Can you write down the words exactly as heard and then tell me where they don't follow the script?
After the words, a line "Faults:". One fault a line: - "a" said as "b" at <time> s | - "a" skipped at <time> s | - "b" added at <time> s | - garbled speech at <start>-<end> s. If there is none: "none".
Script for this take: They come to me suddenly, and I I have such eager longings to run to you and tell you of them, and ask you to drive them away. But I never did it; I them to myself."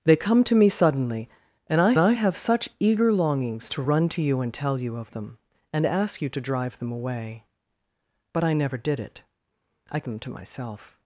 They come to me suddenly, and I I have such eager longings to run to you and tell you of them, and ask you to drive them away. But I never did it; I them to myself."
Faults:
none